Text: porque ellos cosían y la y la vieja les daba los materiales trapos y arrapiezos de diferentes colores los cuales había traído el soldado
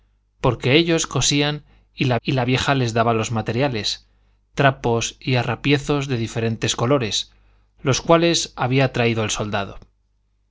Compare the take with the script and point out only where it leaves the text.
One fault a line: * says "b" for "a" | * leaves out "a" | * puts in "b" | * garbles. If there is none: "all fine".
all fine